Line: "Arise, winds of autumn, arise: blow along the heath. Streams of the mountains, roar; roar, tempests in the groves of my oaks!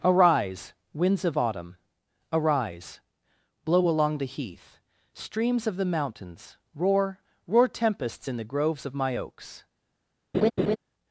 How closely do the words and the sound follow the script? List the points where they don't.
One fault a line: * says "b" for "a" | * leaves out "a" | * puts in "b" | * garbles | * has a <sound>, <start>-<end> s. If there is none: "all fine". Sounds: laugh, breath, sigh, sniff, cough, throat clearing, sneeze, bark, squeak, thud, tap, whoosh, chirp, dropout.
* has a laugh, 10.3-10.8 s